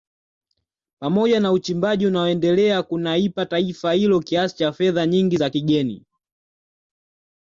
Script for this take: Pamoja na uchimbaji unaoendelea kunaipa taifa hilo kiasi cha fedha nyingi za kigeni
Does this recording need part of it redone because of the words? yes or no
no